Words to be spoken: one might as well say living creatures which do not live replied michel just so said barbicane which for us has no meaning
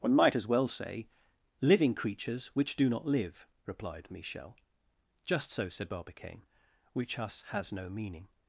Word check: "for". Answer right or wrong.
wrong